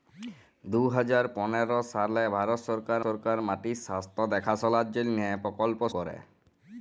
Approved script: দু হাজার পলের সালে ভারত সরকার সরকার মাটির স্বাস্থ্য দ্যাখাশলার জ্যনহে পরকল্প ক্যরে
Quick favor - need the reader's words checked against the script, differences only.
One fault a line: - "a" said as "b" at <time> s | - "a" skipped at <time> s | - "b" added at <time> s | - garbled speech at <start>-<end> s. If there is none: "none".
none